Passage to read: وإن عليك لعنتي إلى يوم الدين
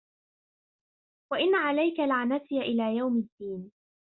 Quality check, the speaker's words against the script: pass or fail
pass